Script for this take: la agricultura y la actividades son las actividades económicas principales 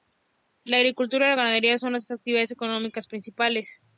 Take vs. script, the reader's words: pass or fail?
fail